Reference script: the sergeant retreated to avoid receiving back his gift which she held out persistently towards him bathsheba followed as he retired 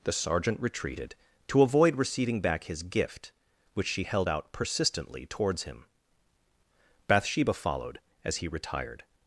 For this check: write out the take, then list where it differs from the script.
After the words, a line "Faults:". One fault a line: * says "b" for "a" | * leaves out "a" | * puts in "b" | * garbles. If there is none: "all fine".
the sergeant retreated to avoid receiving back his gift which she held out persistently towards him bathsheba followed as he retired
Faults:
all fine